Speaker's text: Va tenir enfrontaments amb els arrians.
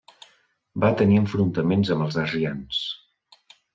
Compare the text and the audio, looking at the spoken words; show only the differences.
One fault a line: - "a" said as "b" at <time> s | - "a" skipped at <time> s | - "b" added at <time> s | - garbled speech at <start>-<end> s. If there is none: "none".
none